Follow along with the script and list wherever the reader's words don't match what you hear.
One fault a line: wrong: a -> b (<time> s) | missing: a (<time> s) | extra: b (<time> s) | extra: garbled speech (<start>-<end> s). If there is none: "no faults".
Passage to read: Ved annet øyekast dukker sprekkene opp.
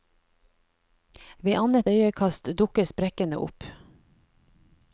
no faults